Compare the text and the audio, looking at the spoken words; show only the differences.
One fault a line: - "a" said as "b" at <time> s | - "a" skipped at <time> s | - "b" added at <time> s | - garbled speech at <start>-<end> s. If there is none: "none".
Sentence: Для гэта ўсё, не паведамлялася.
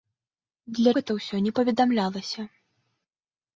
none